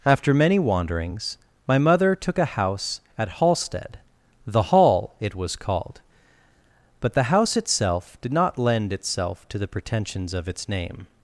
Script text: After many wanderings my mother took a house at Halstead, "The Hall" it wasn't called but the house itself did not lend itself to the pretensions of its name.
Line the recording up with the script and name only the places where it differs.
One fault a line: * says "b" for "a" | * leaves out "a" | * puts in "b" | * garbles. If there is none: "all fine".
* says "was" for "wasn't"